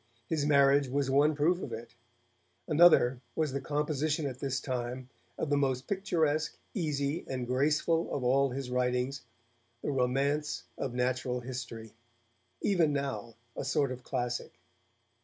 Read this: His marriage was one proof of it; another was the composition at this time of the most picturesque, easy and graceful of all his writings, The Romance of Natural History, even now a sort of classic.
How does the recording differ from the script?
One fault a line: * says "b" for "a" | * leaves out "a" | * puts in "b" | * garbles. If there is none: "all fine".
all fine